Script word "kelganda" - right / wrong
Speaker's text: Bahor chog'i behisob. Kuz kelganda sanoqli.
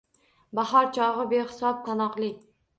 wrong